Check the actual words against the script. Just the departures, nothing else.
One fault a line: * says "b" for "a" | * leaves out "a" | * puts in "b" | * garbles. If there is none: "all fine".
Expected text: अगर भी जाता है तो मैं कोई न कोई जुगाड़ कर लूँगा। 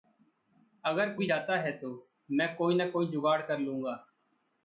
all fine